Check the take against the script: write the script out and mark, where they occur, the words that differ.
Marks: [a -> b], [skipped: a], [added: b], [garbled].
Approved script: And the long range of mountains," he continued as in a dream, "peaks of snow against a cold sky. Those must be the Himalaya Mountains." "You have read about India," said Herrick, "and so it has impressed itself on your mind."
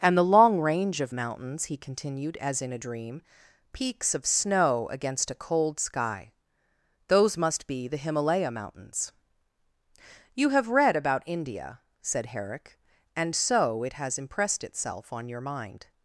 And the long range of mountains," he continued as in a dream, "peaks of snow against a cold sky. Those must be the Himalaya Mountains." "You have read about India," said Herrick, "and so it has impressed itself on your mind."